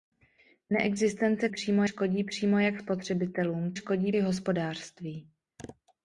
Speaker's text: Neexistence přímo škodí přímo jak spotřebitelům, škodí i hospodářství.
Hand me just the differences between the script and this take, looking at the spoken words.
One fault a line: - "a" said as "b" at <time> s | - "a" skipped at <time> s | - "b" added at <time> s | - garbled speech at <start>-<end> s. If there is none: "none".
none